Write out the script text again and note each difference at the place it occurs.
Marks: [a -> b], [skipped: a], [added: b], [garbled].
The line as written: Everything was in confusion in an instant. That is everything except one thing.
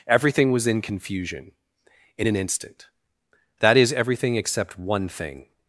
Everything was in confusion in an instant. That is everything except one thing.